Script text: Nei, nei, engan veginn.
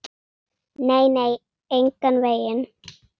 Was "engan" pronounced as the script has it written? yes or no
yes